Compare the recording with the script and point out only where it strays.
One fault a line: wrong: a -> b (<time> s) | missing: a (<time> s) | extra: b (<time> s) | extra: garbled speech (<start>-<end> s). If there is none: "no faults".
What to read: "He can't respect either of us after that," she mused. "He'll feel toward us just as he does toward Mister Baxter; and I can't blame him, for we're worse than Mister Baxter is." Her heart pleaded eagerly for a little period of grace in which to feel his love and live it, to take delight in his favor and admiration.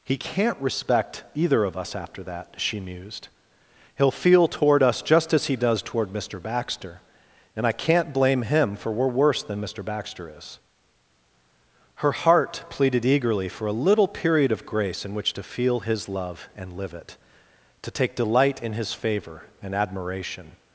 no faults